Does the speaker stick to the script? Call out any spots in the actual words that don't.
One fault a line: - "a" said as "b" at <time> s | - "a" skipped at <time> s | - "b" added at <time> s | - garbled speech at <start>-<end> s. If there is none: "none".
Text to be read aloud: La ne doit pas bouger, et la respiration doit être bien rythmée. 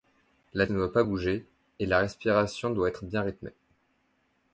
none